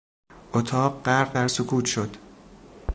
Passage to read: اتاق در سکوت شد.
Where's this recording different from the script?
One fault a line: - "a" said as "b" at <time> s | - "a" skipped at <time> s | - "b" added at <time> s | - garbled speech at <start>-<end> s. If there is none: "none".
- "غرق" added at 1.1 s